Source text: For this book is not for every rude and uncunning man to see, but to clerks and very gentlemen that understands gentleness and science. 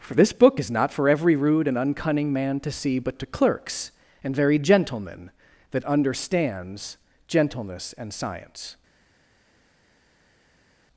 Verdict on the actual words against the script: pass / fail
pass